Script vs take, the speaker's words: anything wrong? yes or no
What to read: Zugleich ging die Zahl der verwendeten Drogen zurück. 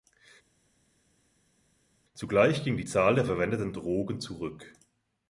no